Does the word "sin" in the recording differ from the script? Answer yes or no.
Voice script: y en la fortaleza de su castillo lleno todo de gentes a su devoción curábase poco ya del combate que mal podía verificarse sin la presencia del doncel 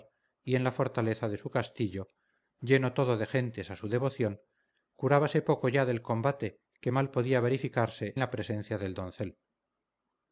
yes